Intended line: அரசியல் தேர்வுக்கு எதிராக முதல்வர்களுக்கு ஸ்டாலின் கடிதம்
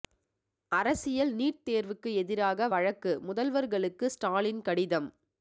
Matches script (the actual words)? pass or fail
fail